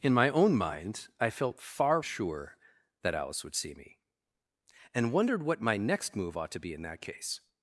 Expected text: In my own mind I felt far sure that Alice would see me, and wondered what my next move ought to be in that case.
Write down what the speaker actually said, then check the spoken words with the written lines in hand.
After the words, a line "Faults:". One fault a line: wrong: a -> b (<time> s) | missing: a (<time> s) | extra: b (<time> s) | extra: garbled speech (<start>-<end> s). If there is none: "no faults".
In my own mind I felt far sure that Alice would see me, and wondered what my next move ought to be in that case.
Faults:
no faults